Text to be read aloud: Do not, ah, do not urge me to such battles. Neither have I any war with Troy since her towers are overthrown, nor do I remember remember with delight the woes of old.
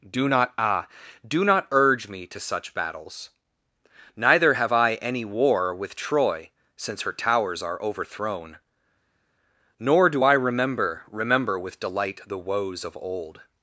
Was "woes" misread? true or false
false